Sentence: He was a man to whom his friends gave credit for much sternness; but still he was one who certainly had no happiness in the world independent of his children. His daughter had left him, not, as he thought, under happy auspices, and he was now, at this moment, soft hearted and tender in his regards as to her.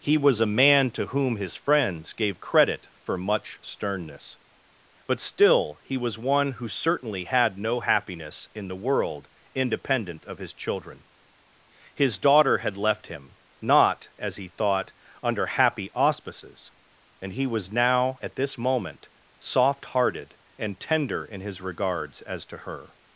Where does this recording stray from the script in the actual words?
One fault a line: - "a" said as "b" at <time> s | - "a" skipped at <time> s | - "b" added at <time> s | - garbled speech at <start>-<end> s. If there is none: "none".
none